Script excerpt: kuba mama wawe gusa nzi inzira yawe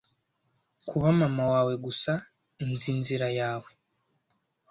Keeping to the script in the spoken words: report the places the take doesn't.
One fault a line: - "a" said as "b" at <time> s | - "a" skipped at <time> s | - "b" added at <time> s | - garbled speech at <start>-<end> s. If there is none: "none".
none